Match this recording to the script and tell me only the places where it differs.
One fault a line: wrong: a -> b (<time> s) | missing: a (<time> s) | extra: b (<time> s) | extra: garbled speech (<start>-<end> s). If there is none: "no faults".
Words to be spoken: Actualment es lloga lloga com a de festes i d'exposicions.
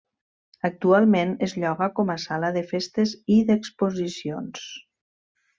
missing: lloga (1.9 s)
extra: sala (2.3 s)